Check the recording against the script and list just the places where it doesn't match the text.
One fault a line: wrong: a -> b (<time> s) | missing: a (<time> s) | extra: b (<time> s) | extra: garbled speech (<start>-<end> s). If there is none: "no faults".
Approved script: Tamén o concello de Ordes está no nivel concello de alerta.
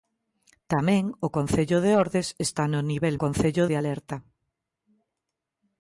no faults